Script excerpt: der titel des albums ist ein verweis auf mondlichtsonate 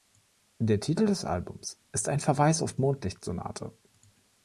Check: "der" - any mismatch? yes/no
no